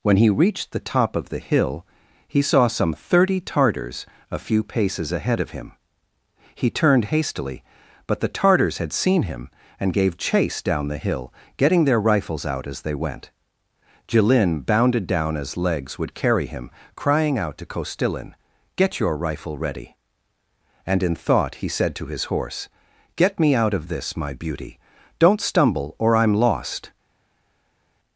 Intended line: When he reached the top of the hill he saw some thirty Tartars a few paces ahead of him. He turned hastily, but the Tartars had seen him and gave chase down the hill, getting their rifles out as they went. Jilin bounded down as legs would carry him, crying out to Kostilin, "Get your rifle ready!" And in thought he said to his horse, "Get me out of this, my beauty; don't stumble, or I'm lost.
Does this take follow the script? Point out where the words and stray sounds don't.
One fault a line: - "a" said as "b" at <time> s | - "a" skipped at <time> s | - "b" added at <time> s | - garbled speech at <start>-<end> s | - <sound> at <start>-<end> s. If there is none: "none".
none